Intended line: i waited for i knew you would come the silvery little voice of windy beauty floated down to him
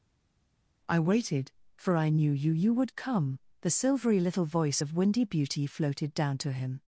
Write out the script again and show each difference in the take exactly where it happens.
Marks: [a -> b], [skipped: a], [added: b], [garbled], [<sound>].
i waited for i knew you [added: you] would come the silvery little voice of windy beauty floated down to him